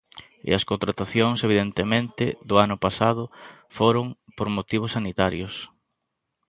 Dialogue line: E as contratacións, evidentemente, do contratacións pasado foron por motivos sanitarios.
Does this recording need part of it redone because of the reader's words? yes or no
yes